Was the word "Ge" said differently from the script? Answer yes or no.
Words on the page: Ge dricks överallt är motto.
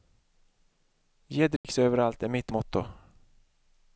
no